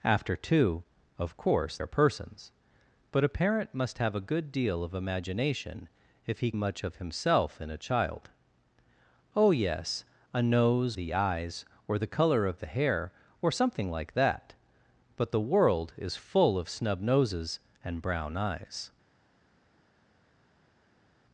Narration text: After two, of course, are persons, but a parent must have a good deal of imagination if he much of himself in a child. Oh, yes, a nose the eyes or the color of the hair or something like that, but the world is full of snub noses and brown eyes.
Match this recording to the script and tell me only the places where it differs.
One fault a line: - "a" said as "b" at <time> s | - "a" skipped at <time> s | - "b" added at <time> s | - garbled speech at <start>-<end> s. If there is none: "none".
none